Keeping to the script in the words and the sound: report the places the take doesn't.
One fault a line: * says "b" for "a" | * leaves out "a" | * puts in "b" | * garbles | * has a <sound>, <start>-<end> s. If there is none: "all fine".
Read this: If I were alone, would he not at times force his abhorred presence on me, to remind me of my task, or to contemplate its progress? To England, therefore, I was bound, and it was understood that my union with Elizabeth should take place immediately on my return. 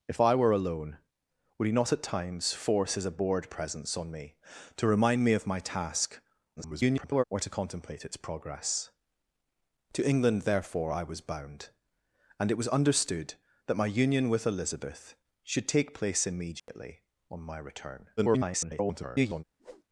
* garbles
* has a dropout, 16.6-16.7 s
* garbles
* has a whoosh, 19.6-19.8 s